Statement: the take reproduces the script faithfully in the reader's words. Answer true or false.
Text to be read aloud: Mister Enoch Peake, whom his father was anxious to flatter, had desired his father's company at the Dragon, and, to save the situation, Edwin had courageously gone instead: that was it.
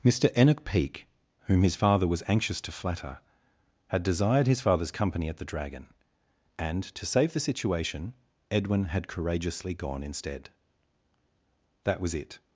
true